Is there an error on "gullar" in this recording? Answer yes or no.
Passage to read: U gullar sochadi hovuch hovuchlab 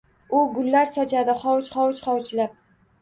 no